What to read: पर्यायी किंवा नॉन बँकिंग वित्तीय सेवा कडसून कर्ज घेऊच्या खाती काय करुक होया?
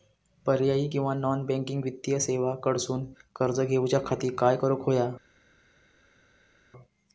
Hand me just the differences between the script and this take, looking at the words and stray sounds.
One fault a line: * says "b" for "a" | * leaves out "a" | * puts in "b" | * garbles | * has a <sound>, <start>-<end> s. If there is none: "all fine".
all fine